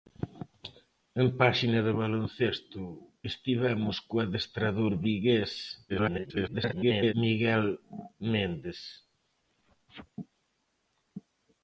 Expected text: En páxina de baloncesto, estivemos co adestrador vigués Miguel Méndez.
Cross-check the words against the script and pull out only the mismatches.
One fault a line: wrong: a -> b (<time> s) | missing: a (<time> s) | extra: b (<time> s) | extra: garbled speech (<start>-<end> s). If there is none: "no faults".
extra: garbled speech (5.9-7.1 s)